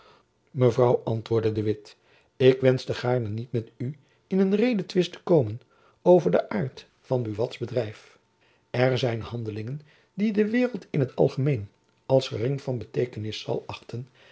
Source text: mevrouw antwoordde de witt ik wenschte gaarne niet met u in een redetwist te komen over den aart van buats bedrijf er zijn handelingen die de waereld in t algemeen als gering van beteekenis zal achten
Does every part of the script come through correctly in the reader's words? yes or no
yes